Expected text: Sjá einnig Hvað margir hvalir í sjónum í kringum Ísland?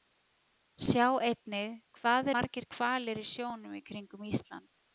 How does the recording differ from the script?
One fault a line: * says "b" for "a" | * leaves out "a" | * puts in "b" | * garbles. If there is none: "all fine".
all fine